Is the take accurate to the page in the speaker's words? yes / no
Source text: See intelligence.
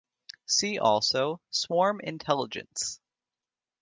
no